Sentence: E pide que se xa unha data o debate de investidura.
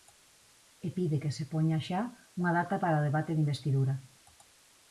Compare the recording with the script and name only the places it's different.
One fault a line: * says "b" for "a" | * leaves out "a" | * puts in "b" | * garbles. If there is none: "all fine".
* puts in "poña"
* puts in "para"